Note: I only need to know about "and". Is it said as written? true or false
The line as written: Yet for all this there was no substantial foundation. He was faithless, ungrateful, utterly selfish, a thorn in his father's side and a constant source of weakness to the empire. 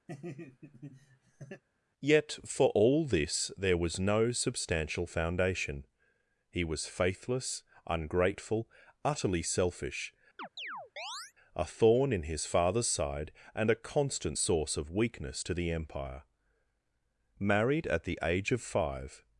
true